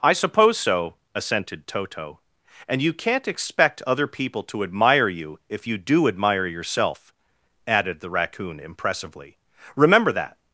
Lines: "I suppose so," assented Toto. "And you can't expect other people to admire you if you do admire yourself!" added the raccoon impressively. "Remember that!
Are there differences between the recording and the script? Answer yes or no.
no